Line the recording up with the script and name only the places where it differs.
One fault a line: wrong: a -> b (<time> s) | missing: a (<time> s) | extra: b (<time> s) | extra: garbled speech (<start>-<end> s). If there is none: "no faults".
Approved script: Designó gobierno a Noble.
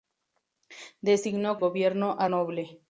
no faults